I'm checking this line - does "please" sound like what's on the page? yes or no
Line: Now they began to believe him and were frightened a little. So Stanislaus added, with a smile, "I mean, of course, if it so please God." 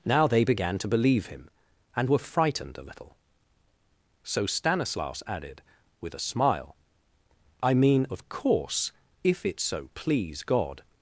yes